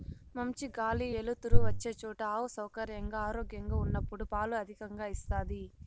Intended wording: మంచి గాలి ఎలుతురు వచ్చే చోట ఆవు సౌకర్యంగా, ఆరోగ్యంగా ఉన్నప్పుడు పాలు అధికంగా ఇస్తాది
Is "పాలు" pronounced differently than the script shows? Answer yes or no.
no